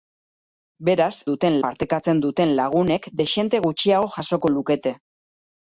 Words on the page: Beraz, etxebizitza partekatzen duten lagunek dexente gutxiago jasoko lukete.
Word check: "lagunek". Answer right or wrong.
right